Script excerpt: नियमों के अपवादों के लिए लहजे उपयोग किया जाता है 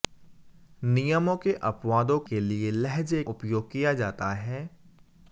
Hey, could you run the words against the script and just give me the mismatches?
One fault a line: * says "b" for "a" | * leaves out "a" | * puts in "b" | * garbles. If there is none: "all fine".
all fine